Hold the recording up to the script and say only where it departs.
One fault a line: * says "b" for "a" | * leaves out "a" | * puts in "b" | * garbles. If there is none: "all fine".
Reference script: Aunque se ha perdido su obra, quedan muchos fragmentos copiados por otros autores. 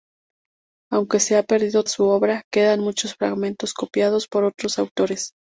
all fine